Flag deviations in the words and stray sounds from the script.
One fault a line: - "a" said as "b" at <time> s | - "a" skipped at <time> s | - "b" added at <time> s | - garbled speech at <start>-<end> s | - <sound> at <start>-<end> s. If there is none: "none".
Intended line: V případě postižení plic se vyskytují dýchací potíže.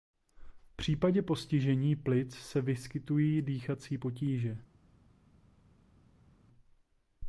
none